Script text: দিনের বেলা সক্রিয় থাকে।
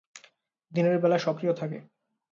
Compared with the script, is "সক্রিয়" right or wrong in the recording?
right